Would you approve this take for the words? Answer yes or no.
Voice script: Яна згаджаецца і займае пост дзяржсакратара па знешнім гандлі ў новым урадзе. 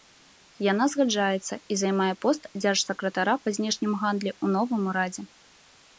yes